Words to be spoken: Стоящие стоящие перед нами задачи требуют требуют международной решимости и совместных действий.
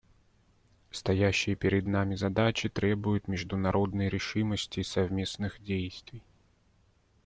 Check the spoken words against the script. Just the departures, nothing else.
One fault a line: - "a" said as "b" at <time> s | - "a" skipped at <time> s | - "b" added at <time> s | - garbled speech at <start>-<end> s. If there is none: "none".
- "стоящие" skipped at 1.6 s
- "требуют" skipped at 3.3 s